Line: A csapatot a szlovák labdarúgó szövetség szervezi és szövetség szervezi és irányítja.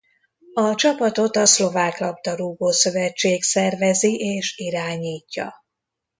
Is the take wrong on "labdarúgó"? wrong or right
right